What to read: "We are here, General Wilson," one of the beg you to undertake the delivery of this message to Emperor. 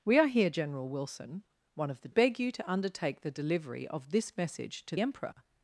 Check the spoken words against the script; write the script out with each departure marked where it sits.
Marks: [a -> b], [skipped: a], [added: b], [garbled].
"We are here, General Wilson," one of the beg you to undertake the delivery of this message to Emperor.